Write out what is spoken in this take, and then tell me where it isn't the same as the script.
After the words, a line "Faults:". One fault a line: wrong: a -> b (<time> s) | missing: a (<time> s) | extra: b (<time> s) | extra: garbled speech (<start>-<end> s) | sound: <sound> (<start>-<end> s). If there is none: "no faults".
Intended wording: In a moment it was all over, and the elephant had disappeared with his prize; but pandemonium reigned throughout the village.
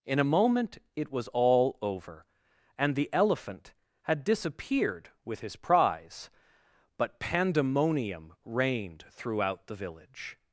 In a moment it was all over, and the elephant had disappeared with his prize; but pandemonium reigned throughout the village.
Faults:
no faults